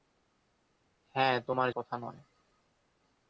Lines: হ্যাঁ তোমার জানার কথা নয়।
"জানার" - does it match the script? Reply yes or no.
no